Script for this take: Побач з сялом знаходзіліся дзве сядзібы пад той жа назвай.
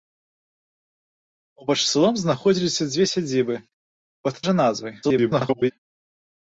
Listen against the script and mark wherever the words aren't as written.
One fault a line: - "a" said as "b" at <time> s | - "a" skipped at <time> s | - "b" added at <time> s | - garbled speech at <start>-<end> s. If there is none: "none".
- "той" skipped at 4.4 s
- garbled speech at 5.0-5.7 s